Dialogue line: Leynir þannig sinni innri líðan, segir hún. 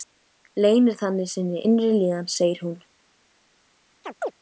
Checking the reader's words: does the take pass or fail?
pass